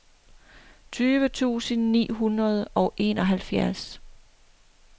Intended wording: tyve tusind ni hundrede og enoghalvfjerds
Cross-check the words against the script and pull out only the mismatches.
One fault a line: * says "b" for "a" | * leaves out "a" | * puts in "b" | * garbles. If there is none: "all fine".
all fine